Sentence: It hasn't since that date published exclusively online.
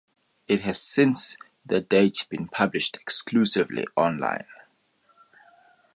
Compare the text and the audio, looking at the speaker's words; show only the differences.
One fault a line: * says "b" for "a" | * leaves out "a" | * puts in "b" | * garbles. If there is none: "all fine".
* says "has" for "hasn't"
* puts in "been"